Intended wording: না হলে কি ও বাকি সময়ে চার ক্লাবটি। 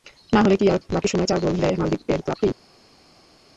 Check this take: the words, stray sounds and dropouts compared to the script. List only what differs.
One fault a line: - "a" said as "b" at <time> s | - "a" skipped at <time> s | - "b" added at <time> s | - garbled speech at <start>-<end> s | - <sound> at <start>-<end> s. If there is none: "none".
- "ও" said as "আর" at 0.7 s
- "গোল দেয় মালদ্বীপের" added at 1.4 s